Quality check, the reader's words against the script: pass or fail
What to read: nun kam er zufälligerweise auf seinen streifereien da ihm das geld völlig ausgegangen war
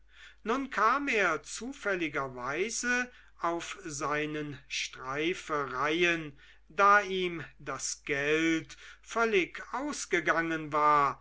pass